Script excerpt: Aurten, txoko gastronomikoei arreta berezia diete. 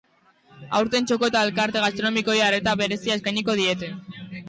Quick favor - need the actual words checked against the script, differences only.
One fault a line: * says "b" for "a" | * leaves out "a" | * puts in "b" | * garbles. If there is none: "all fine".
* puts in "eta elkarte"
* puts in "eskainiko"